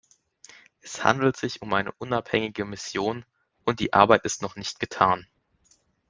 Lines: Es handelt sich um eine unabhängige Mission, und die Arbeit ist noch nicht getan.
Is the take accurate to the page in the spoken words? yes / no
yes